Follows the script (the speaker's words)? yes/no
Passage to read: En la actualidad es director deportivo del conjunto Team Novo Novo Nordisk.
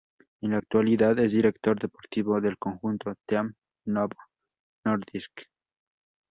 no